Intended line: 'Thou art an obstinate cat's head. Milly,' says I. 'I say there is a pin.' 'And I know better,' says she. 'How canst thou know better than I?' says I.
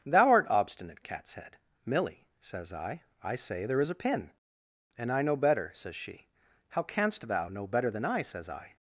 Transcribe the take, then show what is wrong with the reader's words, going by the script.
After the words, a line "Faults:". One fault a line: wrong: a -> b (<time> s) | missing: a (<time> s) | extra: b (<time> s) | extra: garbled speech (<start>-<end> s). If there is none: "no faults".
'Thou art obstinate cat's head. Milly,' says I. 'I say there is a pin.' 'And I know better,' says she. 'How canst thou know better than I?' says I.
Faults:
missing: an (0.5 s)